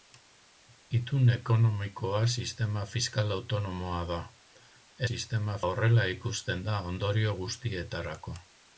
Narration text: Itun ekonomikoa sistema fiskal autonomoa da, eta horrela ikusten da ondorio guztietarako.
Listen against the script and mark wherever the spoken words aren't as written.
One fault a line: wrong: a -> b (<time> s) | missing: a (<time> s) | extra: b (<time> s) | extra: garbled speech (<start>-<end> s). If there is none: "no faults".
wrong: eta -> sistema (5.1 s)